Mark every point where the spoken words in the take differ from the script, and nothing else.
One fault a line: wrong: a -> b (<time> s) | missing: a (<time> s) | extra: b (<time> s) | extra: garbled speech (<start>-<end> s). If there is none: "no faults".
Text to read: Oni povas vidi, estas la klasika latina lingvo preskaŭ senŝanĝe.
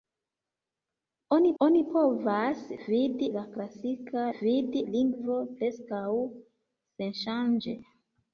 extra: oni (1.6 s)
missing: estas (3.3 s)
wrong: latina -> vidi (4.4 s)